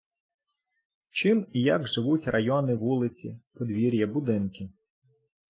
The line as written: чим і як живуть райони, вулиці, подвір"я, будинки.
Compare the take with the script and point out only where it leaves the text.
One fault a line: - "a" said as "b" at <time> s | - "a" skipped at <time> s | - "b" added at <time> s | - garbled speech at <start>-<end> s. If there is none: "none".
none